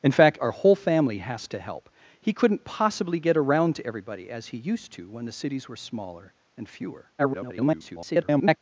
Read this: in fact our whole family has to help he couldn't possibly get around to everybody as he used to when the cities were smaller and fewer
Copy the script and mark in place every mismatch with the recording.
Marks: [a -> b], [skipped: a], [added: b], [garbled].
in fact our whole family has to help he couldn't possibly get around to everybody as he used to when the cities were smaller and fewer [garbled]